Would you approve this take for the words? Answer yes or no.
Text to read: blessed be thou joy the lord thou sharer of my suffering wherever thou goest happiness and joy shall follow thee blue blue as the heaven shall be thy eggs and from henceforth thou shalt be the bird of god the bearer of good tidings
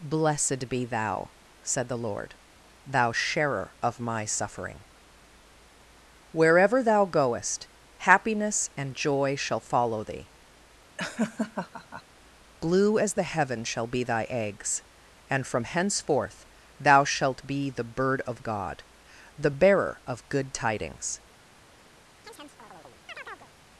no